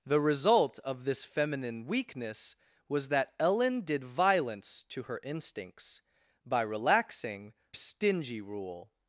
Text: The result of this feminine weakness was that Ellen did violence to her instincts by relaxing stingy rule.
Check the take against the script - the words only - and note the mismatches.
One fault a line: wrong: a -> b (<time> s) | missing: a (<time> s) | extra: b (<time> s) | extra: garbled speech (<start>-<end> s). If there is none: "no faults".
no faults